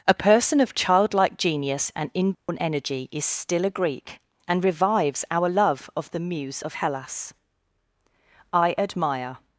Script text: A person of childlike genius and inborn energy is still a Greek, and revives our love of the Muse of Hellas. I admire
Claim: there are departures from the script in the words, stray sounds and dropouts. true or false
true